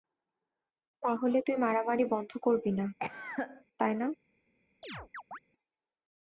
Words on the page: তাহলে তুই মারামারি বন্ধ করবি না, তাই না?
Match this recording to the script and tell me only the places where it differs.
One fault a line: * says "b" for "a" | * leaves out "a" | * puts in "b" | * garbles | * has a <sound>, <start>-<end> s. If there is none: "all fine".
* has a cough, 3.0-3.6 s
* has a chirp, 4.8-5.4 s